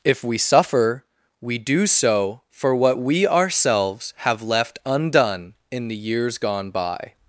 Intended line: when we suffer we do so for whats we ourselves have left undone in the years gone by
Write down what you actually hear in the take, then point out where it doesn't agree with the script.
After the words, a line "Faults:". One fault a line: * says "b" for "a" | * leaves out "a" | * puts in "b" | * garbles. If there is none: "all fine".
if we suffer we do so for what we ourselves have left undone in the years gone by
Faults:
* says "if" for "when"
* says "what" for "whats"